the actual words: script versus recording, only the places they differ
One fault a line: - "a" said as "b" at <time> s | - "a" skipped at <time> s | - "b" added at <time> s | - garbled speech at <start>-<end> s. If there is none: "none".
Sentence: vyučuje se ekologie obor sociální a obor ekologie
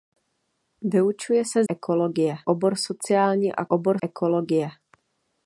none